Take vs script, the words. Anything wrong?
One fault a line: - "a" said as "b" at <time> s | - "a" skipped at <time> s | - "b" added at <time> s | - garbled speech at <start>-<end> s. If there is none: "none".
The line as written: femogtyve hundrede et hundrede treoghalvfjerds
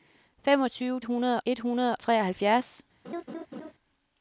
none